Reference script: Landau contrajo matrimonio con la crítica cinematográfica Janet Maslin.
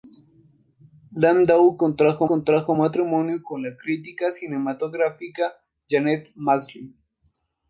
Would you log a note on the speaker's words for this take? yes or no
yes